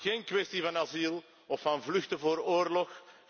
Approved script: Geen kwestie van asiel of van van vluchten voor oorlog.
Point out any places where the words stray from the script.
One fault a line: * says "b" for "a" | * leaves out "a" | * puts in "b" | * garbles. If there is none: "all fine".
* leaves out "van"